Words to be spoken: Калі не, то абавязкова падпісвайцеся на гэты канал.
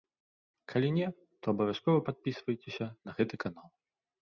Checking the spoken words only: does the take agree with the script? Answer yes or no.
yes